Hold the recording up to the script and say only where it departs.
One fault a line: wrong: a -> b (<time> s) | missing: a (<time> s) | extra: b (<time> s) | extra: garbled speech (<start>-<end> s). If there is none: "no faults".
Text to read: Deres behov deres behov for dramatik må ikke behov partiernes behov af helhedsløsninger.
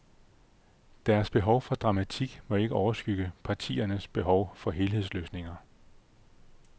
missing: deres behov (1.6 s)
wrong: behov -> overskygge (2.8 s)
wrong: af -> for (4.5 s)